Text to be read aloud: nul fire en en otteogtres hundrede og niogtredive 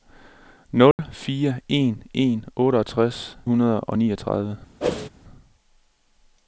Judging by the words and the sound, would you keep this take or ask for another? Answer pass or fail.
fail